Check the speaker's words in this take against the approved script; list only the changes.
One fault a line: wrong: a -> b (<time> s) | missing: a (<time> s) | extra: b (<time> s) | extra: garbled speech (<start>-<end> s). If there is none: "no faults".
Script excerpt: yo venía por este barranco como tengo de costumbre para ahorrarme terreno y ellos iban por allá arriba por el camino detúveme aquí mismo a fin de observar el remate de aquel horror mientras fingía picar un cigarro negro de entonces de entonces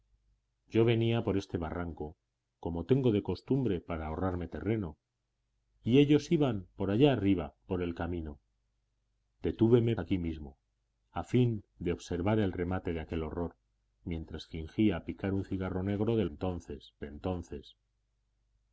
no faults